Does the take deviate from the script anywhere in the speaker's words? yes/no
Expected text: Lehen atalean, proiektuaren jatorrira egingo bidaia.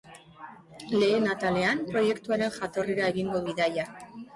no